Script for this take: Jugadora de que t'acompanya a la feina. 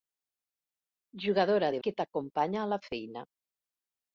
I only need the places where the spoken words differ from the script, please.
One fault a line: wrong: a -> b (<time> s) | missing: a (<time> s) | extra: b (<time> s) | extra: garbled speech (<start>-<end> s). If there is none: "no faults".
no faults